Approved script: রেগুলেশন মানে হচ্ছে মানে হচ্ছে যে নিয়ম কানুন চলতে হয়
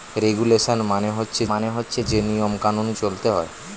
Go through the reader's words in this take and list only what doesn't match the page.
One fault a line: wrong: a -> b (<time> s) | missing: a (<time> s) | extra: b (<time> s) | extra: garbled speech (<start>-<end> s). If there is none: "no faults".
no faults